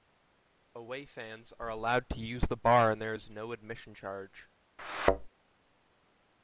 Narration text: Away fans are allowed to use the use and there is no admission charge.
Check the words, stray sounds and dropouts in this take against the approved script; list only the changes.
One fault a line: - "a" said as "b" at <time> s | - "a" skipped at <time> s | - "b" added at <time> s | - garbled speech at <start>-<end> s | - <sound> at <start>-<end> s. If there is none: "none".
- "use" said as "bar" at 2.6 s
- thud at 4.8-5.3 s